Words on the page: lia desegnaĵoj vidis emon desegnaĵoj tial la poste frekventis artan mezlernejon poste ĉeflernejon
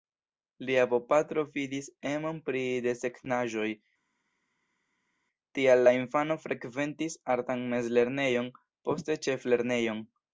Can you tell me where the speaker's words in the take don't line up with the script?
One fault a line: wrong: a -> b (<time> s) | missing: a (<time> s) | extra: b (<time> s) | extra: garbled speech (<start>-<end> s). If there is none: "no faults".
wrong: desegnaĵoj -> bopatro (0.9 s)
extra: pri (2.5 s)
wrong: poste -> infano (6.0 s)